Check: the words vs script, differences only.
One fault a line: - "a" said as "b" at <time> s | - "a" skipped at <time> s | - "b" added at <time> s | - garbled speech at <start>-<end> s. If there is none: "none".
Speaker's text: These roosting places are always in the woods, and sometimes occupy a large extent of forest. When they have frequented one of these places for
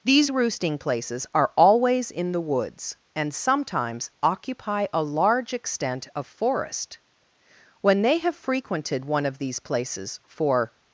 none